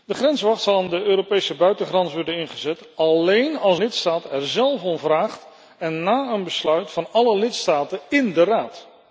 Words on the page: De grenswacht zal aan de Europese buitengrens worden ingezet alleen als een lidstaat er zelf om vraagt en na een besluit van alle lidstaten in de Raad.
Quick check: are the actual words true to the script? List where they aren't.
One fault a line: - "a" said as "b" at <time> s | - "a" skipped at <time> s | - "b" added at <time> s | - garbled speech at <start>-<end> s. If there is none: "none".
- "een" skipped at 3.8 s